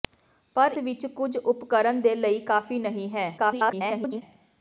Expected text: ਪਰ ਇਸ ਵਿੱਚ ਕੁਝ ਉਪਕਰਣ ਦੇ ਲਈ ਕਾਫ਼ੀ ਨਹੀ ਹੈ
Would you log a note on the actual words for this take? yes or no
yes